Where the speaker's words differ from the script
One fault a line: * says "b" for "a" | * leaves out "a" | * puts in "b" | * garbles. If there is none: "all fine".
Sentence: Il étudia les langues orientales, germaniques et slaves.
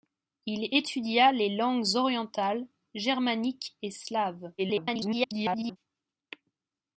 * garbles